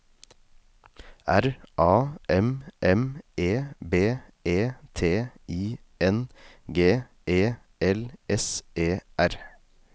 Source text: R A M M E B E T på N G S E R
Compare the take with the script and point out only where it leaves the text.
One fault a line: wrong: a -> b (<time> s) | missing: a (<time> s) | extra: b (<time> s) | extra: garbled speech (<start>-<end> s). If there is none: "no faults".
wrong: på -> I (5.5 s)
extra: E L (7.2 s)